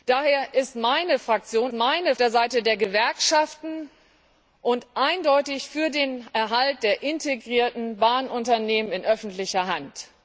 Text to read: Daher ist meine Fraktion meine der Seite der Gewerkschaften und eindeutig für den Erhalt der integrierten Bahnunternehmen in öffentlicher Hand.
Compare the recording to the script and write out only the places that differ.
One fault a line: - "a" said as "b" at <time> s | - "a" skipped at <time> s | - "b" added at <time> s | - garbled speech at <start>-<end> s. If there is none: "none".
none